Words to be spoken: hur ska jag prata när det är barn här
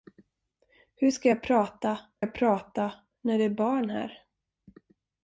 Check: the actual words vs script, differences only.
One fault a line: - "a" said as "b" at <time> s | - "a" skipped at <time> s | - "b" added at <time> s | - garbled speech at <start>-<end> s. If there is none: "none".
- "jag prata" added at 2.2 s